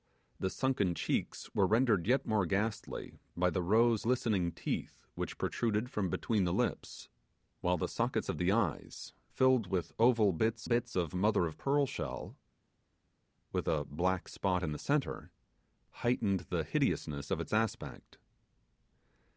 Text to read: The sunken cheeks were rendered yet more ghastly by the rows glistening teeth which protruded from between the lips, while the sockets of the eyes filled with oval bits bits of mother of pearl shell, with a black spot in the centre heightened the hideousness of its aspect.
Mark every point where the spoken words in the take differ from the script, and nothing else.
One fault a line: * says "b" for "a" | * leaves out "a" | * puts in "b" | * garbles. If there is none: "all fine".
all fine